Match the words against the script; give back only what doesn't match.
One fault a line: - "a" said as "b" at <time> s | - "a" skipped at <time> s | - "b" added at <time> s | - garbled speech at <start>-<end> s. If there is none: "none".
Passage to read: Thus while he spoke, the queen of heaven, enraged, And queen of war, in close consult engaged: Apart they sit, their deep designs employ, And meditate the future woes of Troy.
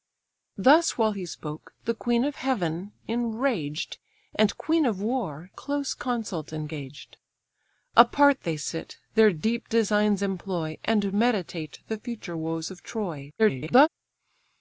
- "in" skipped at 5.5 s
- garbled speech at 13.4-13.9 s